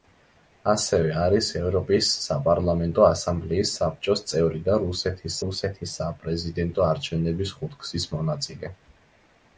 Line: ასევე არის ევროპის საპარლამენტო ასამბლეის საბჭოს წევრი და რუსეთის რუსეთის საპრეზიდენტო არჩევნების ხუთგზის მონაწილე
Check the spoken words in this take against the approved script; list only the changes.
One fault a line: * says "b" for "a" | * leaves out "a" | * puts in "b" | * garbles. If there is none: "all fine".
all fine